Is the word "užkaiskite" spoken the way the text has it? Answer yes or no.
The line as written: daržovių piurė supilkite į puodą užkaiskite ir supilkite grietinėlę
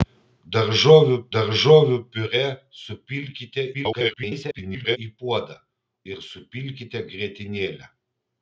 no